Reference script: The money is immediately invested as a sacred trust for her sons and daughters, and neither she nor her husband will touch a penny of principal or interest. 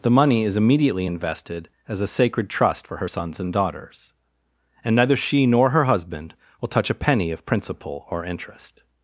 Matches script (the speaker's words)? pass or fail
pass